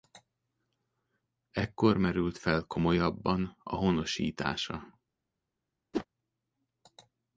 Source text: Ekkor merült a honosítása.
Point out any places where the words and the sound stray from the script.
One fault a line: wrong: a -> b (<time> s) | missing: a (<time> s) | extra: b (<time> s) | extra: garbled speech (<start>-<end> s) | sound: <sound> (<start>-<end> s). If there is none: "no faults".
extra: fel komolyabban (2.4 s)
sound: whoosh (5.9-6.1 s)